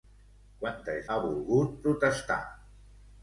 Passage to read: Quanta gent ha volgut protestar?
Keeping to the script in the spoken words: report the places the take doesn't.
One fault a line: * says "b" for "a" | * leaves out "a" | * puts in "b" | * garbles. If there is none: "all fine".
* leaves out "gent"